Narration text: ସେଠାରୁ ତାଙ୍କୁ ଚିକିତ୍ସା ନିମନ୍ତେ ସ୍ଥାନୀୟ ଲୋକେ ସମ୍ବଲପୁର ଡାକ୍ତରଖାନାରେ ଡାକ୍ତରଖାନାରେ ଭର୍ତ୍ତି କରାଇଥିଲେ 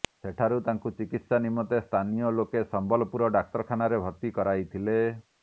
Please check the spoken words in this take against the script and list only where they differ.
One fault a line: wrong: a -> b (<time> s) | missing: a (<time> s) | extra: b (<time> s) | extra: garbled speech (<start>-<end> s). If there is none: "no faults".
missing: ଡାକ୍ତରଖାନାରେ (4.0 s)